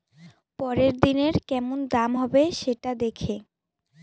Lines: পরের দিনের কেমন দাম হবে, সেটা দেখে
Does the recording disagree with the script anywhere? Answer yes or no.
no